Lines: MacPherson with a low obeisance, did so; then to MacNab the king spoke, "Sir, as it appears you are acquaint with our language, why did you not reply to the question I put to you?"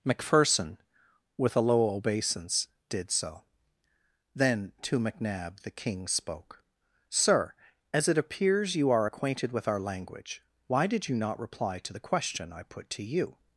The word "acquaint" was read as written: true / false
false